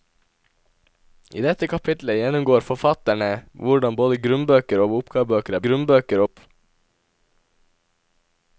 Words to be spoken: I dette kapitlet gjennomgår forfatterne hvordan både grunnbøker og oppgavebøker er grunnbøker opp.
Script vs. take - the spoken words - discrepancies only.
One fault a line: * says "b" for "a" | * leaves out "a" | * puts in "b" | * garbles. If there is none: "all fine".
all fine